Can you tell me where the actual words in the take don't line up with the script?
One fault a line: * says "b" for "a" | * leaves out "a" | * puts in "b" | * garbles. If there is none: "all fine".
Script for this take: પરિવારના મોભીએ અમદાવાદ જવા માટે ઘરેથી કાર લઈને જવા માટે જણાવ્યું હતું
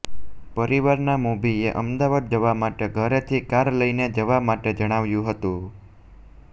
all fine